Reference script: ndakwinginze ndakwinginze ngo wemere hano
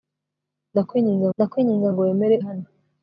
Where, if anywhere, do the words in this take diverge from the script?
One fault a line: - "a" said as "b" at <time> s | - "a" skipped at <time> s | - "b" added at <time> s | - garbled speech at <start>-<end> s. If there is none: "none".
none